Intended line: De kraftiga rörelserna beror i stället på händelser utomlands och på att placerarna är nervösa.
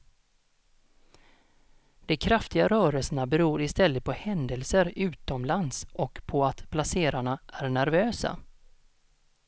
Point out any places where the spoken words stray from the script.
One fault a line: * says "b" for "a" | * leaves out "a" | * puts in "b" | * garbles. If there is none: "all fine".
all fine